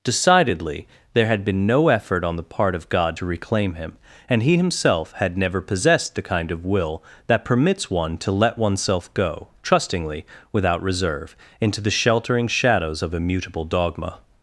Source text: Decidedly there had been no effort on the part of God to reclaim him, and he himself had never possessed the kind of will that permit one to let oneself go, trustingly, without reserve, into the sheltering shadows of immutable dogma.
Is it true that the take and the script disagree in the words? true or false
true